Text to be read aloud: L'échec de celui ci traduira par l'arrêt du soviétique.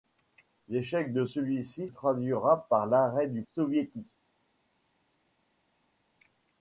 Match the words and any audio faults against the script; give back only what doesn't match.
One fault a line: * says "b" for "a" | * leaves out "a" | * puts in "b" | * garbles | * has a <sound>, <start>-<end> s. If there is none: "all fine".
all fine